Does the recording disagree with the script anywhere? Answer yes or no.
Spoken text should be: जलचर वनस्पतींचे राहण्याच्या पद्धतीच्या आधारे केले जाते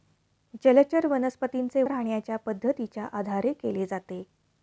no